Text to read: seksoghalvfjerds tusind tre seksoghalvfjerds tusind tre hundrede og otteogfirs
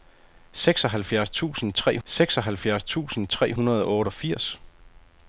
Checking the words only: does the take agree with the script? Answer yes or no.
yes